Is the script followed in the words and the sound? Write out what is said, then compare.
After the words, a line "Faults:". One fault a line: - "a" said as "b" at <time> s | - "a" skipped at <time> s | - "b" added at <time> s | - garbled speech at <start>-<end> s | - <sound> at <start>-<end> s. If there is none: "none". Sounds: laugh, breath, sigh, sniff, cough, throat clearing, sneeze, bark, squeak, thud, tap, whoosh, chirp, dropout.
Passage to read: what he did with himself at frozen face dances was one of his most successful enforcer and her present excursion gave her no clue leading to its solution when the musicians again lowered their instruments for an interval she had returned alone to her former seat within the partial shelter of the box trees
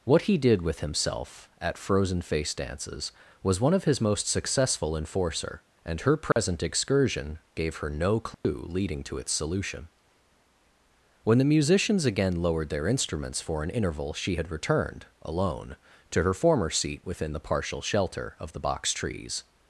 what he did with himself at frozen face dances was one of his most successful enforcer and her present excursion gave her no clue leading to its solution when the musicians again lowered their instruments for an interval she had returned alone to her former seat within the partial shelter of the box trees
Faults:
- dropout at 6.3-6.4 s
- dropout at 8.3-8.4 s